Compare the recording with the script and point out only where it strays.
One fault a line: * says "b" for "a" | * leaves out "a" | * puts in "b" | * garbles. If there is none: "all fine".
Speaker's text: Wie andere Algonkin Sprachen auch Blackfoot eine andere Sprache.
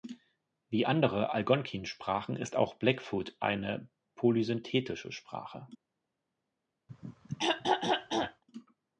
* puts in "ist"
* says "polysynthetische" for "andere"